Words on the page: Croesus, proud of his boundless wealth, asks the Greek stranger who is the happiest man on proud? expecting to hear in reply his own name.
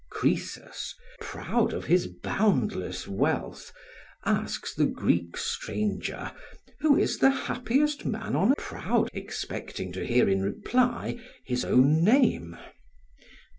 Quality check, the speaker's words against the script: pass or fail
pass